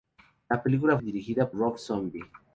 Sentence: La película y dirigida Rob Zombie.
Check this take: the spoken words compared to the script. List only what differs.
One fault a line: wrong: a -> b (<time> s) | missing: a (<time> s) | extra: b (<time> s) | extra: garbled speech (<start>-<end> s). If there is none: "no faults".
no faults